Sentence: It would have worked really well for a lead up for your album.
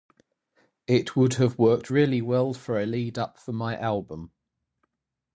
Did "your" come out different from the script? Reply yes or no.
yes